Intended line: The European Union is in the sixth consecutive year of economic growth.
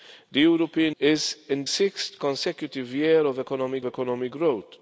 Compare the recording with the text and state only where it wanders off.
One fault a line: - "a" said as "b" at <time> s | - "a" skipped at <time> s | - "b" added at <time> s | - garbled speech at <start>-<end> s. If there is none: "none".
- "Union" skipped at 0.9 s
- "the" skipped at 1.7 s
- "economic" added at 3.8 s